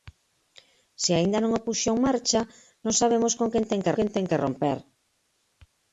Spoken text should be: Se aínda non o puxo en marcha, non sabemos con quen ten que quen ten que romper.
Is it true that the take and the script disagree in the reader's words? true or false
false